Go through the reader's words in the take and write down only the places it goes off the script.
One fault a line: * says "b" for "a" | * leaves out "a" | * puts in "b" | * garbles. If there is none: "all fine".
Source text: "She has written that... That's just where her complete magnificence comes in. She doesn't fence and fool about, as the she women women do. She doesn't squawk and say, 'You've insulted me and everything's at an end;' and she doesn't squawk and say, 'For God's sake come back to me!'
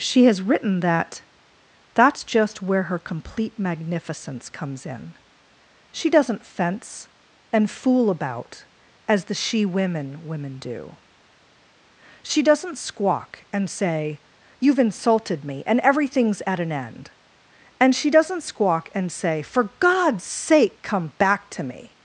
all fine